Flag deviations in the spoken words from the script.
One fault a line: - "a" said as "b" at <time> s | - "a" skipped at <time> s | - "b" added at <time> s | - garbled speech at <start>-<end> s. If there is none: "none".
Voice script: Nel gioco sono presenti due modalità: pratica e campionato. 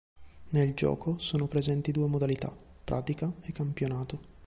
none